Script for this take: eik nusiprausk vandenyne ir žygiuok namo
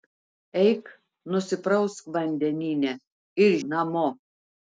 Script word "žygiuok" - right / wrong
wrong